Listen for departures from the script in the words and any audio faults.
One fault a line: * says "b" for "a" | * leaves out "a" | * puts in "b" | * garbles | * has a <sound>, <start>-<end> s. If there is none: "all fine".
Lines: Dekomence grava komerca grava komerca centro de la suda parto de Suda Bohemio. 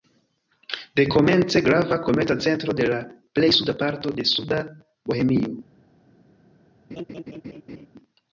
* leaves out "grava komerca"
* puts in "plej"
* has a laugh, 6.9-7.9 s